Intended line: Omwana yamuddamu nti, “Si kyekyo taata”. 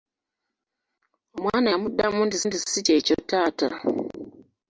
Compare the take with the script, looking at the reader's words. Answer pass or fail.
fail